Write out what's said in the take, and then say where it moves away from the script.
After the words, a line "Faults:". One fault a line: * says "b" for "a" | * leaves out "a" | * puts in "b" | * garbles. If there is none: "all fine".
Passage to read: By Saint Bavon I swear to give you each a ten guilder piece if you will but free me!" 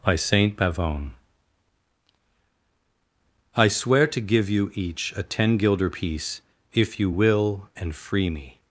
By Saint Bavon I swear to give you each a ten guilder piece if you will and free me!"
Faults:
* says "and" for "but"